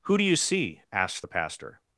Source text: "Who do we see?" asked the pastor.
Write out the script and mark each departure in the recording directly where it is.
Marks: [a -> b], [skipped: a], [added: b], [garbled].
"Who do [we -> you] see?" asked the pastor.